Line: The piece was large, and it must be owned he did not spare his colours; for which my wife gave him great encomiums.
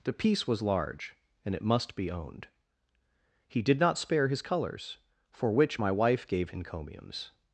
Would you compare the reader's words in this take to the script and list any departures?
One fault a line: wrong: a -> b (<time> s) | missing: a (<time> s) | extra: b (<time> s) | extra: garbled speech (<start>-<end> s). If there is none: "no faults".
missing: him great (6.5 s)